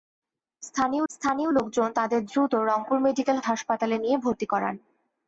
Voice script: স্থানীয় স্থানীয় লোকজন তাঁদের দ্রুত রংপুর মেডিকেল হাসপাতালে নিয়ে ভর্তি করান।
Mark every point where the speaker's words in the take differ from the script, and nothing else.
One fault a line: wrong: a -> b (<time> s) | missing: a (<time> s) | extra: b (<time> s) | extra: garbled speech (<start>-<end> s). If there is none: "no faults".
no faults